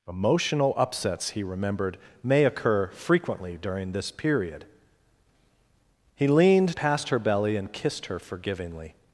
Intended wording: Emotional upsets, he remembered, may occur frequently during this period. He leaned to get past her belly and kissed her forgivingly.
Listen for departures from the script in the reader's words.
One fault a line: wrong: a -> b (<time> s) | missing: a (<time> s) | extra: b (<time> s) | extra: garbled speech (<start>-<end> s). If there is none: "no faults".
missing: to get (6.8 s)